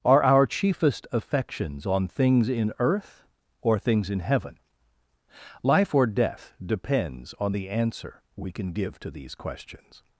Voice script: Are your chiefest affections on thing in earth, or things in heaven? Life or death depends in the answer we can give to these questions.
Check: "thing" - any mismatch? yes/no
yes